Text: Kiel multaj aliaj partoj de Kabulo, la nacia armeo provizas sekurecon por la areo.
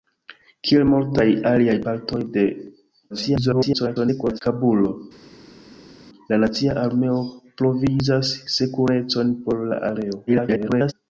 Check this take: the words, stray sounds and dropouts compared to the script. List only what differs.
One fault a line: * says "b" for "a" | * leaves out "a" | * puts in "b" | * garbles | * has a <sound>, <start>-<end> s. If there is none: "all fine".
* garbles
* garbles